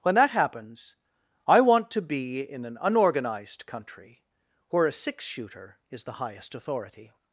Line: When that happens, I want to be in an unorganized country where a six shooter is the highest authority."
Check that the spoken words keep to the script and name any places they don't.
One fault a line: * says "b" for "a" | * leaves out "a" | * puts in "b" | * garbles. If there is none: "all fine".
all fine